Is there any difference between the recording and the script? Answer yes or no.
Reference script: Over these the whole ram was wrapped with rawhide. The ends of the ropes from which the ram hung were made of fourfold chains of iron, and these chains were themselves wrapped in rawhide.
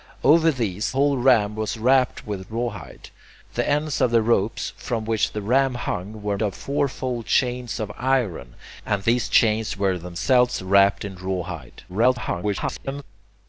yes